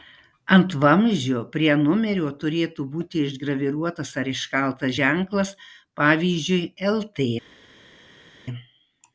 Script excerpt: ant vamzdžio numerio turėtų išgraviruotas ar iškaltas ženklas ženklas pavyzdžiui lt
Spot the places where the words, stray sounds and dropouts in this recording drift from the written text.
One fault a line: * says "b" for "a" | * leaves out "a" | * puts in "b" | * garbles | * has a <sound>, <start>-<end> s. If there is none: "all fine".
* puts in "prie"
* puts in "būti"
* leaves out "ženklas"